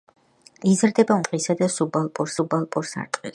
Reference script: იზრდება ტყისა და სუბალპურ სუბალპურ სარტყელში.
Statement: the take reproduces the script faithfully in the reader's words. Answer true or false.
true